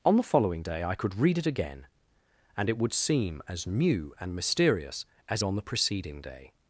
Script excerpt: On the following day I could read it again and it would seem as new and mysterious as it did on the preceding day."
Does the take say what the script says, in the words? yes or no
no